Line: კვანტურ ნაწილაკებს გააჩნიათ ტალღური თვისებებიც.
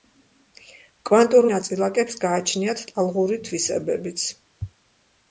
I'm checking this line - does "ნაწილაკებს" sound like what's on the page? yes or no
yes